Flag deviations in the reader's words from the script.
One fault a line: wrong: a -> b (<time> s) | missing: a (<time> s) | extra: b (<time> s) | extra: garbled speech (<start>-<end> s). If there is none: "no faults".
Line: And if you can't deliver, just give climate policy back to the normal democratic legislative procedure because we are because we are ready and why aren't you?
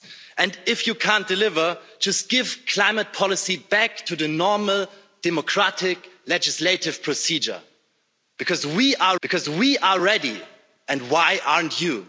no faults